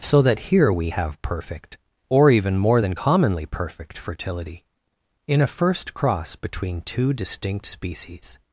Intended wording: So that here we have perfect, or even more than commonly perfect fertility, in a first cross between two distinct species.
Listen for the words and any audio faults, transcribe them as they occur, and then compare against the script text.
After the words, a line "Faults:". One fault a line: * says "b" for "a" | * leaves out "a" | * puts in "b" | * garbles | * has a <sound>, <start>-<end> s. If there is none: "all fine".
So that here we have perfect, or even more than commonly perfect fertility, in a first cross between two distinct species.
Faults:
all fine